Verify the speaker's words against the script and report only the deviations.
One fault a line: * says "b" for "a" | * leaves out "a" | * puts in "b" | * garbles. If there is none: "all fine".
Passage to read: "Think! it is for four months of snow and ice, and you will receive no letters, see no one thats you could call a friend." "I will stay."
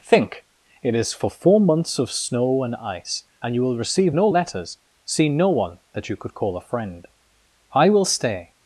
* says "that" for "thats"